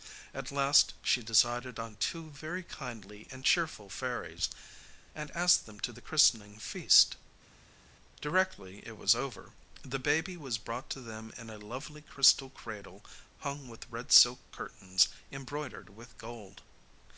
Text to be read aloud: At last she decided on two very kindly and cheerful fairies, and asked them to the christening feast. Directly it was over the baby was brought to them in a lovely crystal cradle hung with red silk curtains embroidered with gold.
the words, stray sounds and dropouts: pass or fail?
pass